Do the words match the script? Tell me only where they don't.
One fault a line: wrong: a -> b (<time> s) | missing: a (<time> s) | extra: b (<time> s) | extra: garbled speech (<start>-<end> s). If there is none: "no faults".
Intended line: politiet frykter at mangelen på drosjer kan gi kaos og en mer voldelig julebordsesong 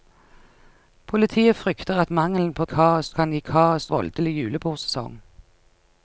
wrong: drosjer -> kaos (2.6 s)
missing: og en mer (3.9 s)